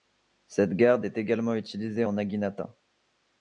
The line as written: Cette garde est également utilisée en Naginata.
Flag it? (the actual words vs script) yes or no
no